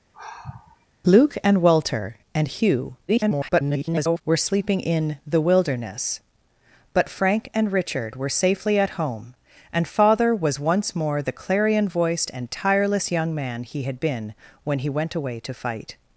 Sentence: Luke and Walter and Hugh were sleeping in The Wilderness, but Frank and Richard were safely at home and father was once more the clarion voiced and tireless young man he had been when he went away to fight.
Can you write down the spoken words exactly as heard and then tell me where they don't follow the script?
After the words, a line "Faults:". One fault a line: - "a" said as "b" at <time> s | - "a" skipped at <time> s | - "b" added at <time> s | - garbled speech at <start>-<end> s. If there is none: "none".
Luke and Walter and Hugh [garbled] were sleeping in The Wilderness, but Frank and Richard were safely at home and father was once more the clarion voiced and tireless young man he had been when he went away to fight.
Faults:
- garbled speech at 3.1-4.2 s